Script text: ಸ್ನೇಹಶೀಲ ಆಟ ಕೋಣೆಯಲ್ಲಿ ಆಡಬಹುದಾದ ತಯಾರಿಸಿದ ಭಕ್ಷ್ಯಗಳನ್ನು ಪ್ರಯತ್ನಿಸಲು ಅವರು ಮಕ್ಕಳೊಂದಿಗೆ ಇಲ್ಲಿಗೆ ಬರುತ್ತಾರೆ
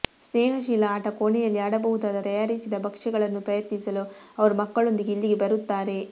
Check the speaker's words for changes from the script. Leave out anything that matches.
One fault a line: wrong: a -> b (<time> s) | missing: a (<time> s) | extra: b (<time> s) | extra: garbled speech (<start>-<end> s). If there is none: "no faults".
no faults